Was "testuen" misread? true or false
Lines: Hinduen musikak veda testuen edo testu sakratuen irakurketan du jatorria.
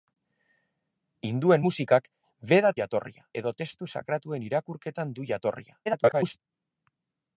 true